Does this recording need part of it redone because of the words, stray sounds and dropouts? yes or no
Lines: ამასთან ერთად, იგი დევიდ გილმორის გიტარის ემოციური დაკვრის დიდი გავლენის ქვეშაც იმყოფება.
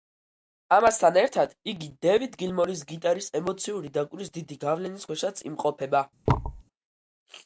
yes